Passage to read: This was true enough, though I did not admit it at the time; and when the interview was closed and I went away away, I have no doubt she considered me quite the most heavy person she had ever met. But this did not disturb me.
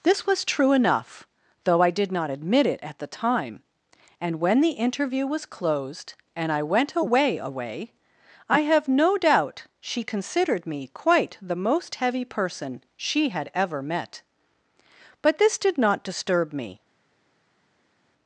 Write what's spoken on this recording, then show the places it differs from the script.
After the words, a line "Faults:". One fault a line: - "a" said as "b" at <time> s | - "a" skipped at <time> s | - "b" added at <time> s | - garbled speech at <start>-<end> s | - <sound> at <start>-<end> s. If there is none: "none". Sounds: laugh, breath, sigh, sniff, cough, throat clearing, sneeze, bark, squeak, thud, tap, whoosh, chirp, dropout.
This was true enough, though I did not admit it at the time; and when the interview was closed and I went away away, I have no doubt she considered me quite the most heavy person she had ever met. But this did not disturb me.
Faults:
none